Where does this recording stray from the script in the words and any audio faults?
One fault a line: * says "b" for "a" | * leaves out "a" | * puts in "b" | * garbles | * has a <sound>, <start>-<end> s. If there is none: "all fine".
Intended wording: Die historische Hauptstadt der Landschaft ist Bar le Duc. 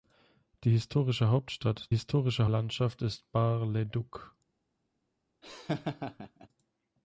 * says "historische" for "der"
* has a laugh, 5.4-6.5 s